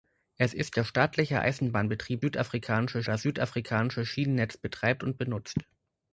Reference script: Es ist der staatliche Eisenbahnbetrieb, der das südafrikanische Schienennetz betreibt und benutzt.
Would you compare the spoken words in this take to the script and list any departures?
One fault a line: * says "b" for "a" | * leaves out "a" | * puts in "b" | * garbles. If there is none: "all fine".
* says "südafrikanische" for "der"